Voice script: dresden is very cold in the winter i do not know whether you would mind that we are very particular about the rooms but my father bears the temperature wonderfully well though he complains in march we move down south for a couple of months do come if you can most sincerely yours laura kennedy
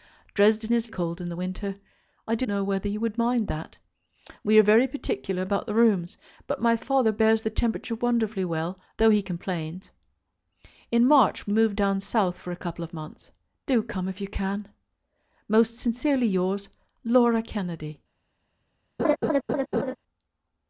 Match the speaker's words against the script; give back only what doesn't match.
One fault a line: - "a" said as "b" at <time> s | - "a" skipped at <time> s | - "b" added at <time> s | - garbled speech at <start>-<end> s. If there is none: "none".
- "very" skipped at 0.9 s
- "not" skipped at 2.5 s